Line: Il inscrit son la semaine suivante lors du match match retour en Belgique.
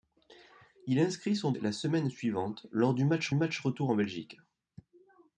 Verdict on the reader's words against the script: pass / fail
pass